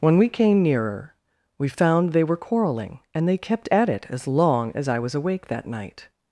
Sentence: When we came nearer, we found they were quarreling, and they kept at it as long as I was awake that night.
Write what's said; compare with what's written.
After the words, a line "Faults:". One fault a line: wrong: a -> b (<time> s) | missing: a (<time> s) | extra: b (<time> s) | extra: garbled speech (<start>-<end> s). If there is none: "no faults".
When we came nearer, we found they were quarreling, and they kept at it as long as I was awake that night.
Faults:
no faults